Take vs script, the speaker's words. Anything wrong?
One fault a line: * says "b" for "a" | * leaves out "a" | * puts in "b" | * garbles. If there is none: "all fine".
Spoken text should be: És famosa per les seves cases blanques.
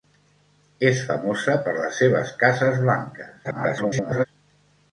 * garbles